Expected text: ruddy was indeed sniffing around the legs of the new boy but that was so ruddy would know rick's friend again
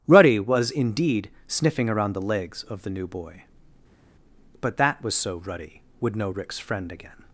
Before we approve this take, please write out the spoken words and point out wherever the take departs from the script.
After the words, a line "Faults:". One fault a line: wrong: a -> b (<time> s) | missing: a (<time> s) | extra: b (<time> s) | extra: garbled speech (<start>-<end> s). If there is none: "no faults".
ruddy was indeed sniffing around the legs of the new boy but that was so ruddy would know rick's friend again
Faults:
no faults